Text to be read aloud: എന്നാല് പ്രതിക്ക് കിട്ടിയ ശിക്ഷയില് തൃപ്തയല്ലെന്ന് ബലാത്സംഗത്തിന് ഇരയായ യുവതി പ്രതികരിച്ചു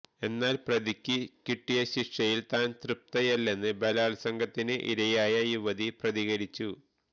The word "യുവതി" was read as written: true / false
true